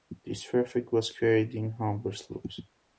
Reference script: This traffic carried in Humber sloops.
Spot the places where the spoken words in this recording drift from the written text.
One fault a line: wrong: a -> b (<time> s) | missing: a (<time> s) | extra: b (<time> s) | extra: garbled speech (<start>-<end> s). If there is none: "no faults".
extra: was (0.9 s)